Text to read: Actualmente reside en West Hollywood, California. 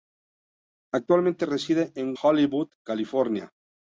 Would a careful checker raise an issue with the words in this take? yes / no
yes